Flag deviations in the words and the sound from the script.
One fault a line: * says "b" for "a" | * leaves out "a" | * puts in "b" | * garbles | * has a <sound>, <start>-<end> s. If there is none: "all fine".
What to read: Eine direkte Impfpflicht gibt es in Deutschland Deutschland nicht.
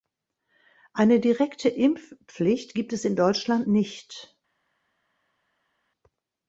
* leaves out "Deutschland"